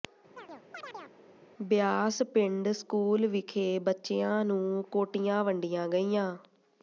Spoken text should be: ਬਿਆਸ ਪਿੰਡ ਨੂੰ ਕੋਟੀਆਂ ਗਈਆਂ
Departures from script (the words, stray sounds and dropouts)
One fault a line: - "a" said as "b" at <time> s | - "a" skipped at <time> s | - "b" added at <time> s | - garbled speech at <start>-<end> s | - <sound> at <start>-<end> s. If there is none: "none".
- chirp at 0.4-1.2 s
- "ਸਕੂਲ ਵਿਖੇ ਬੱਚਿਆਂ" added at 2.7 s
- "ਵੰਡੀਆਂ" added at 5.4 s